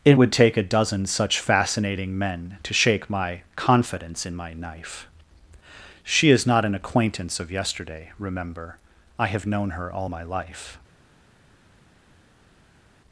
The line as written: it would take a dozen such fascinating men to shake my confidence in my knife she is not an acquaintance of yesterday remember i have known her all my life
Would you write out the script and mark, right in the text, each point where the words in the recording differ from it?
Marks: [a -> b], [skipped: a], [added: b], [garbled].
it would take a dozen such fascinating men to shake my confidence in my knife she is not an acquaintance of yesterday remember i have known her all my life